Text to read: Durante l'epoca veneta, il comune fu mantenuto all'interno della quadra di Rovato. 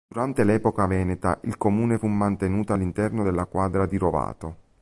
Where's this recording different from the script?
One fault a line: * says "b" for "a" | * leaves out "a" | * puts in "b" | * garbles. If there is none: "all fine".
all fine